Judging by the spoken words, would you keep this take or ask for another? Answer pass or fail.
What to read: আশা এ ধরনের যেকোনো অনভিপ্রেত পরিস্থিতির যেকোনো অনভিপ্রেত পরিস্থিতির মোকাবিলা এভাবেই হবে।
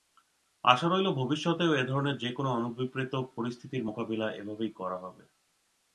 fail